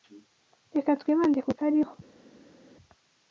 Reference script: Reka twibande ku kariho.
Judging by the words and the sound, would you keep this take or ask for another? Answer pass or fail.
pass